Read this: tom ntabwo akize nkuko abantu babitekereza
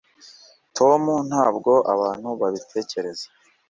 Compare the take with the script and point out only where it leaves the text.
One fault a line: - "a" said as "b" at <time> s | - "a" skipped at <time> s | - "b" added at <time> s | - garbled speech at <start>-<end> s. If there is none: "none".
- "akize nkuko" skipped at 1.7 s